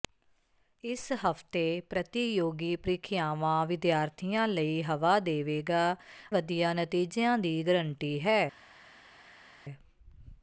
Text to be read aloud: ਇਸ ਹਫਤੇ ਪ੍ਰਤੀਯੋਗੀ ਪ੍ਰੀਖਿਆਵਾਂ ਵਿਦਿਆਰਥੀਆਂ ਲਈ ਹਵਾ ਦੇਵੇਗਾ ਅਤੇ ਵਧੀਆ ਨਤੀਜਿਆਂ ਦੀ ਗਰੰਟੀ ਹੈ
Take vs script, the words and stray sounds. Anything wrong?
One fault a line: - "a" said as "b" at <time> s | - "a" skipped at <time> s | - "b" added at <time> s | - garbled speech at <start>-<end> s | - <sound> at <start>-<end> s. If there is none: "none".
- "ਅਤੇ" skipped at 6.0 s